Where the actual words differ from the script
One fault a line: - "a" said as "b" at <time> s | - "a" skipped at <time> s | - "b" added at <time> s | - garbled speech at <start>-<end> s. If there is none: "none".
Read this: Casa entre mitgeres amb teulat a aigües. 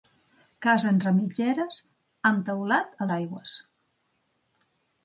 none